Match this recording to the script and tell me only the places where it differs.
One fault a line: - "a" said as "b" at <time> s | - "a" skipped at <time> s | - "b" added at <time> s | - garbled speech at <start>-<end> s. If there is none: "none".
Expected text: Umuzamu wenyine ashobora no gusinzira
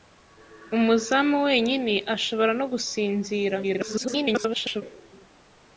- garbled speech at 3.6-4.8 s